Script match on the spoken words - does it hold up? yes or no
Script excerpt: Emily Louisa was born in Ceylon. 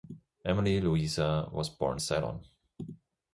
no